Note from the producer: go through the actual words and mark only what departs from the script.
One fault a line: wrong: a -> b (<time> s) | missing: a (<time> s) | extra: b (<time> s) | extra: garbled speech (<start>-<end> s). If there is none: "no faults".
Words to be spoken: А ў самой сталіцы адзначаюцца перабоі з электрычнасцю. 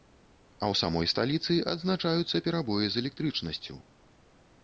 no faults